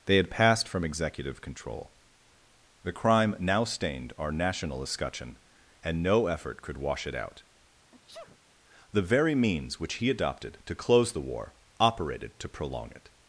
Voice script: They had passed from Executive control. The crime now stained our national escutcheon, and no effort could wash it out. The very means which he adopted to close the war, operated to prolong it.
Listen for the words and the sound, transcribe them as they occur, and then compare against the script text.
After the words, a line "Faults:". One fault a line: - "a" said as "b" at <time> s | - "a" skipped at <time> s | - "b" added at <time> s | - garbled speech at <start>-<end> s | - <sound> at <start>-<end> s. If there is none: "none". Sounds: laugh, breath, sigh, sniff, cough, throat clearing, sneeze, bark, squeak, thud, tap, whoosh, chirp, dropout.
They had passed from Executive control. The crime now stained our national escutcheon, and no effort could wash it out. The very means which he adopted to close the war, operated to prolong it.
Faults:
- sneeze at 7.9-8.4 s